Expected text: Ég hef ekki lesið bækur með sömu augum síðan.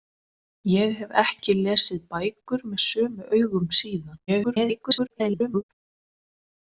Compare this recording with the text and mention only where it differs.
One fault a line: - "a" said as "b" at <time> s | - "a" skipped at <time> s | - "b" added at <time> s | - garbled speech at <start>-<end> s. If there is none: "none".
- garbled speech at 4.3-5.6 s